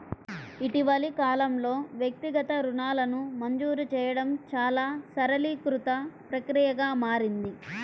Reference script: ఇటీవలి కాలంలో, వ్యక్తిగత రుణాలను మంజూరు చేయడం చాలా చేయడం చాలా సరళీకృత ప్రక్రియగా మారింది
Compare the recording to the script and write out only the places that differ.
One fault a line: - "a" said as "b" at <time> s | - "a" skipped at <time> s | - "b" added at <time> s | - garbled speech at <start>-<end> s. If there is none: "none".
- "చేయడం చాలా" skipped at 4.9 s